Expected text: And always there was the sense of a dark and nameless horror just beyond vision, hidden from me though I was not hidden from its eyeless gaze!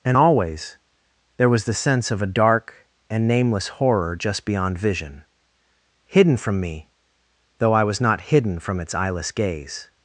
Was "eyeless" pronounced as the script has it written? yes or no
yes